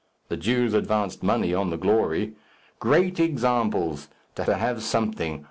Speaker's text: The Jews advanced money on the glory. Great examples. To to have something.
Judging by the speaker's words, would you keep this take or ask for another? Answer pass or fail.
pass